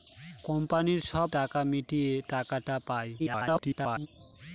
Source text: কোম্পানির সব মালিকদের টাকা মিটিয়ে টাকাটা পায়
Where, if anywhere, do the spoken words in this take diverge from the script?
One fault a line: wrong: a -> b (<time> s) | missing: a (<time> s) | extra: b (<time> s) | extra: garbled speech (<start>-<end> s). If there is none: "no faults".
missing: মালিকদের (1.3 s)
extra: garbled speech (3.2-4.1 s)